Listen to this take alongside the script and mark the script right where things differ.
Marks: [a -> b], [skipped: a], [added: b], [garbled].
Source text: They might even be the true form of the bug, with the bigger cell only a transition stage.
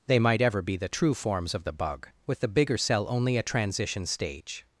They might [even -> ever] be the true [form -> forms] of the bug, with the bigger cell only a transition stage.